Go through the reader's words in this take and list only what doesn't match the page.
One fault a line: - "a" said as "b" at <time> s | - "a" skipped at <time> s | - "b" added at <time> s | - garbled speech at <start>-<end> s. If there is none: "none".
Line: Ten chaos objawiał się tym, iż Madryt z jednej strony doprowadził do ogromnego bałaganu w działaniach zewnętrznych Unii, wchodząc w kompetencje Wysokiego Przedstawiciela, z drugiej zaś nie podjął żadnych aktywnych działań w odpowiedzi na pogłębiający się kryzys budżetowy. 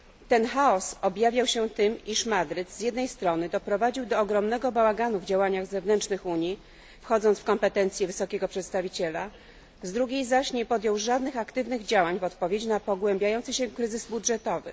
none